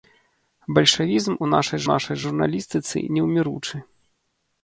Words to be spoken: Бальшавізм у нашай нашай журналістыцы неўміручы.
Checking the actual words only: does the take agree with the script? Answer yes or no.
yes